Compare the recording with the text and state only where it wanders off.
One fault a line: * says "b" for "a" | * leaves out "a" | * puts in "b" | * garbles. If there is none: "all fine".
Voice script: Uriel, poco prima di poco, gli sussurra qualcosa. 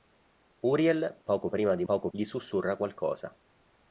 all fine